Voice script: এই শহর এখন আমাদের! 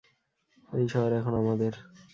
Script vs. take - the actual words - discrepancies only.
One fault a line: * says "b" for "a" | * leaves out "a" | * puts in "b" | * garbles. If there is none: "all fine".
all fine